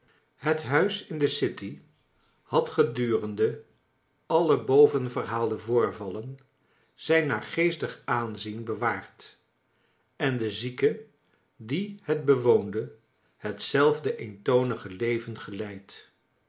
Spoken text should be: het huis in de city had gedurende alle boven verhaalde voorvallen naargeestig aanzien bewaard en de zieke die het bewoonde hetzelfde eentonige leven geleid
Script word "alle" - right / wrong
right